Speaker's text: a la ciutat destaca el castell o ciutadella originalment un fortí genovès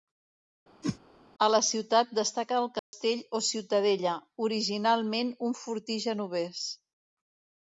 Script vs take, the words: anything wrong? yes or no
no